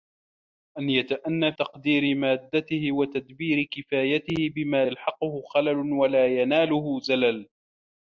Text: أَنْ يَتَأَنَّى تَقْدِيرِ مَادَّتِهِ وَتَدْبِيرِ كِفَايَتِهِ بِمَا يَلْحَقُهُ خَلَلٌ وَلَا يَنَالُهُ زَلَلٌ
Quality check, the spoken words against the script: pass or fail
pass